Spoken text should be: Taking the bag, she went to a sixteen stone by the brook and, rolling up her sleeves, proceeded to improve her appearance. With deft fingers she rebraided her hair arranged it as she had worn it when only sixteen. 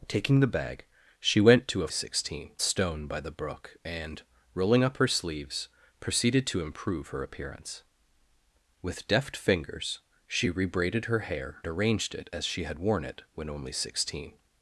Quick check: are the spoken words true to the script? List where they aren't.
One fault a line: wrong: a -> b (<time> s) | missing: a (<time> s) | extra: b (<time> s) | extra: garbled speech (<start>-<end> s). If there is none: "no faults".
no faults